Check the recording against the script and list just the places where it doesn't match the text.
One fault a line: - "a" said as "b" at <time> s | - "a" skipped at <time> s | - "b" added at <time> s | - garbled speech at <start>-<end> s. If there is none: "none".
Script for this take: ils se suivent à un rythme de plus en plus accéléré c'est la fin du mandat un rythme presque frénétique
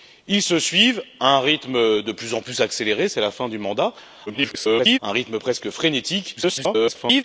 - garbled speech at 4.3-5.0 s
- garbled speech at 6.4-7.2 s